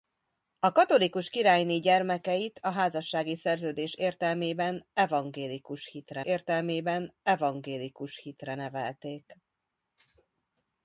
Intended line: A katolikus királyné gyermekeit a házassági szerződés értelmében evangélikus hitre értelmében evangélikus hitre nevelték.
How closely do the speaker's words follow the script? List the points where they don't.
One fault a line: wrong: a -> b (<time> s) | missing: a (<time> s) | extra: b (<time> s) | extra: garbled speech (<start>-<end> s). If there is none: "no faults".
no faults